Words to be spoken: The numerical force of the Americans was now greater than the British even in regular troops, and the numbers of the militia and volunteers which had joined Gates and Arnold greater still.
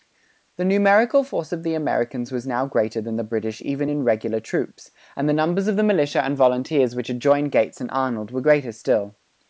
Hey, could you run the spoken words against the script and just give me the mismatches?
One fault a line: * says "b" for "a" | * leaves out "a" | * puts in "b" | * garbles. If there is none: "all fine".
* puts in "were"